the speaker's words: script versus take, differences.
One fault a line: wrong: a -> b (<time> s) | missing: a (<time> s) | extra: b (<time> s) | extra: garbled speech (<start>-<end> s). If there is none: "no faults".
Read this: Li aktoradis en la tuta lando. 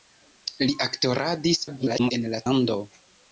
extra: garbled speech (1.7-2.1 s)
missing: tuta (2.4 s)